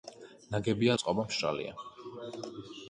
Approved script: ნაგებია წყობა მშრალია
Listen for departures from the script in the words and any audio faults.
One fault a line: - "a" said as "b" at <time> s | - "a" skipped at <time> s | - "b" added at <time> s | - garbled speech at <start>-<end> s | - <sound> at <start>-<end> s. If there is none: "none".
none